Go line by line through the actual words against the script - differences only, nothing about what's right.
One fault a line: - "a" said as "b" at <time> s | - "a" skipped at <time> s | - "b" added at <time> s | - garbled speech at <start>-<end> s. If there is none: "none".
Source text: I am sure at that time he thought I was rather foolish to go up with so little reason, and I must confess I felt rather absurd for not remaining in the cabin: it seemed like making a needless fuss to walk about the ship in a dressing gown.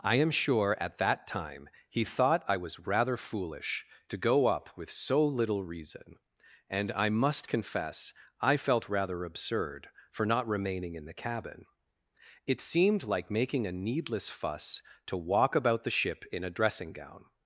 none